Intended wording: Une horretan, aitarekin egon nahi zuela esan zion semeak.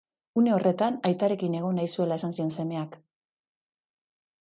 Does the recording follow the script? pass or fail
pass